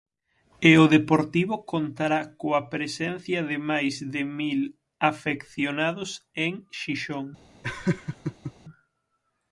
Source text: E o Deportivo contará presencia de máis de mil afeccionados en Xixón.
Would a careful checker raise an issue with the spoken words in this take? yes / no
yes